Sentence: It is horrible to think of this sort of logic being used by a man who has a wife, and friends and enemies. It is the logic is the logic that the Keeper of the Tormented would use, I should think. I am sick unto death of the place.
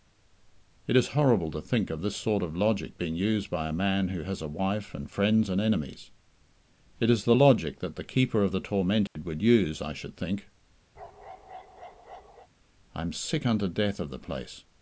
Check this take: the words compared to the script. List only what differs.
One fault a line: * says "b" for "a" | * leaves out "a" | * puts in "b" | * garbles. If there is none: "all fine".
* leaves out "is the logic"